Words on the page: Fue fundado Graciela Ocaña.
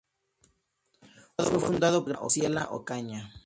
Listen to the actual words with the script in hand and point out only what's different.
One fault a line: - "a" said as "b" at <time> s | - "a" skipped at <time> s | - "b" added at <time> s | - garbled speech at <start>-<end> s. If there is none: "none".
none